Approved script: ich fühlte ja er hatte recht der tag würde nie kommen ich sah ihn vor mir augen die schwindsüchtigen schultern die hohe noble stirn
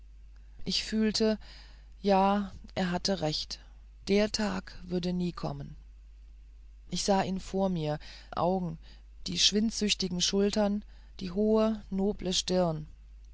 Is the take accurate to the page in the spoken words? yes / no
yes